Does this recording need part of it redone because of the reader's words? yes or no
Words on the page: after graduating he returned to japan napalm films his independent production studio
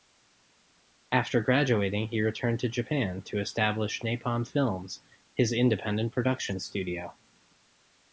yes